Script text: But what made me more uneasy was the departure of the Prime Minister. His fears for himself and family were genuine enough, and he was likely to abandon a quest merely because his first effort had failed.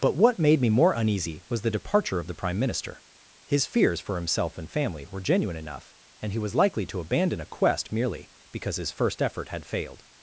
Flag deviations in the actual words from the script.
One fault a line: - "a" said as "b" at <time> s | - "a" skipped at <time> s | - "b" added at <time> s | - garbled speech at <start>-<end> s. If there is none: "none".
none